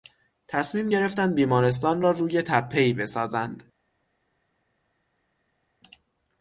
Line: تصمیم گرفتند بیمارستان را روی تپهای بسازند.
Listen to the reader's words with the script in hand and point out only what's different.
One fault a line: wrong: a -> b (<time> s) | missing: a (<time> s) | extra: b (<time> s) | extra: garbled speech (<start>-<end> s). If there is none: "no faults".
no faults